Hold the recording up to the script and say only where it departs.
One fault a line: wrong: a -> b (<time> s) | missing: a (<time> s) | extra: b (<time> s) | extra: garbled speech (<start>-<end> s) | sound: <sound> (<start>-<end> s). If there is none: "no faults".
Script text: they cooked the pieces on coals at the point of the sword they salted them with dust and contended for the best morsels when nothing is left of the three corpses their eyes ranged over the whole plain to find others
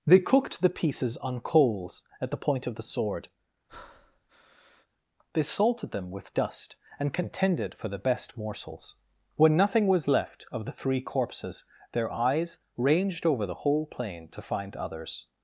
sound: breath (3.7-4.9 s)
wrong: is -> was (9.9 s)